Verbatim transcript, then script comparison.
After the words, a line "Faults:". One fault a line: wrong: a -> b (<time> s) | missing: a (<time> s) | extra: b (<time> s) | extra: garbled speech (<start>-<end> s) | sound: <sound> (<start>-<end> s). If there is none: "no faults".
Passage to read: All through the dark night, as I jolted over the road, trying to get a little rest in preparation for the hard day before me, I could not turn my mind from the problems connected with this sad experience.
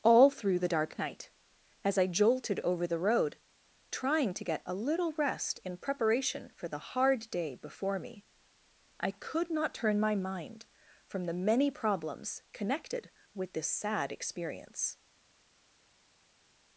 All through the dark night, as I jolted over the road, trying to get a little rest in preparation for the hard day before me, I could not turn my mind from the many problems connected with this sad experience.
Faults:
extra: many (11.3 s)